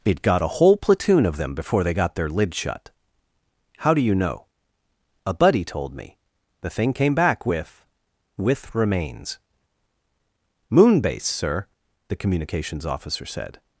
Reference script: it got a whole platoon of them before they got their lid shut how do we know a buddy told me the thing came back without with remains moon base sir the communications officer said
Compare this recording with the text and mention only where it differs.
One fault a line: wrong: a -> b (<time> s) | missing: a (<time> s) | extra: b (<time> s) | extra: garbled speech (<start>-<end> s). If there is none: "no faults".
wrong: we -> you (4.0 s)
wrong: without -> with (7.5 s)